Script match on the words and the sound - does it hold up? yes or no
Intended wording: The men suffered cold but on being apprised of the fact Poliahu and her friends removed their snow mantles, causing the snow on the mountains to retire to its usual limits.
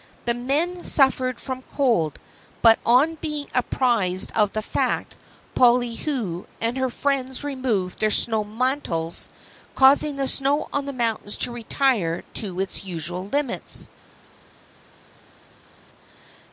no